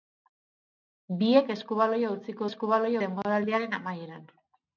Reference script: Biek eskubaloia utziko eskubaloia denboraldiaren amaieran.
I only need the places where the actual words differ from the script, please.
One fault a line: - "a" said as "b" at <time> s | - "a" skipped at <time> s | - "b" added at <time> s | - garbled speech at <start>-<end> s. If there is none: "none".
none